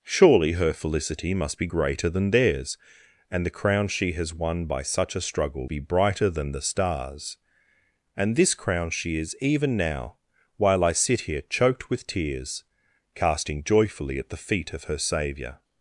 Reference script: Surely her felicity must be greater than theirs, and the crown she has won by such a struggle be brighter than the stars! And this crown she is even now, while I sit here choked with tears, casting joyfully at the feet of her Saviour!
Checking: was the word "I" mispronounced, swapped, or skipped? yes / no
no